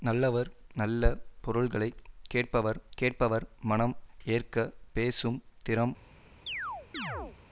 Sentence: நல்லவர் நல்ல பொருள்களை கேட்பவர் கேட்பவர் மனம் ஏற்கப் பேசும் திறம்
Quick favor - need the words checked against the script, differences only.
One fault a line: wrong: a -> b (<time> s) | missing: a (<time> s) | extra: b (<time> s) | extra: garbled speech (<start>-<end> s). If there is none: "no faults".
no faults